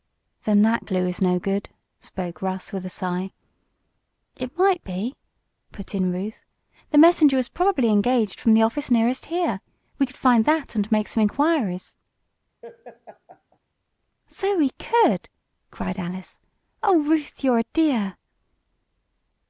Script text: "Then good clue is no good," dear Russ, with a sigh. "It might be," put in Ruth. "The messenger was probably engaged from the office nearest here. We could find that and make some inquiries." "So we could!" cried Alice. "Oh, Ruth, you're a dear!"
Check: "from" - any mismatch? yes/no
no